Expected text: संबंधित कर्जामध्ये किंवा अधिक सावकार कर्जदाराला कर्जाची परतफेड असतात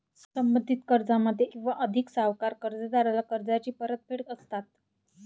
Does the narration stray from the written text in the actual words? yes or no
no